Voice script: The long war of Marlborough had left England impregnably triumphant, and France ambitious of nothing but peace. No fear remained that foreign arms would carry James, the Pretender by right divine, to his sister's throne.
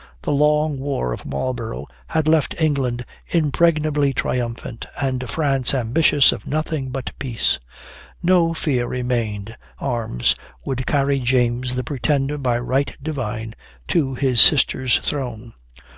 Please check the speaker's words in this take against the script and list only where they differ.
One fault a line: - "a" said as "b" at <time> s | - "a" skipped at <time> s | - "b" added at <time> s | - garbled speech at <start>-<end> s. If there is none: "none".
- "that foreign" skipped at 9.6 s